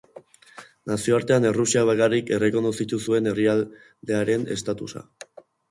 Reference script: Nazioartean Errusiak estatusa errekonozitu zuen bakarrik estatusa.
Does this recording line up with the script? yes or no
no